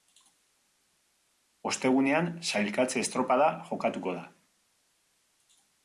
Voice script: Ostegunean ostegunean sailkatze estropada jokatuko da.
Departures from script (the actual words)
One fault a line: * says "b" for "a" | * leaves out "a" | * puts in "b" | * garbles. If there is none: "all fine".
* leaves out "ostegunean"